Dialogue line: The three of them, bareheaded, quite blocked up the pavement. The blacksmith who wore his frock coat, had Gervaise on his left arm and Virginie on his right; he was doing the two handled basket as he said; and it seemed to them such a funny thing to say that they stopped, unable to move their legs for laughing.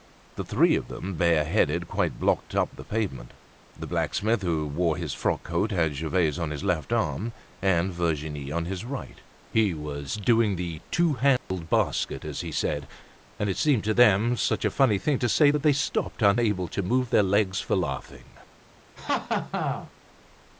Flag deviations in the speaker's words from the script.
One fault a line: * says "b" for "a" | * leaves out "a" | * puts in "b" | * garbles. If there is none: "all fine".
all fine